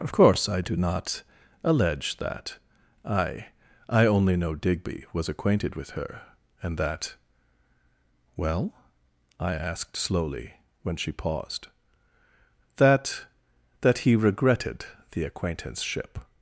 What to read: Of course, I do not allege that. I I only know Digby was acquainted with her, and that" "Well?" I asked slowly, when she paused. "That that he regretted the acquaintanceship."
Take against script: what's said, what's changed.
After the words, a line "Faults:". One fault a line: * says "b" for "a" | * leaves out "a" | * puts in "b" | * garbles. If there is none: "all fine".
Of course, I do not allege that. I I only know Digby was acquainted with her, and that" "Well?" I asked slowly, when she paused. "That that he regretted the acquaintanceship."
Faults:
all fine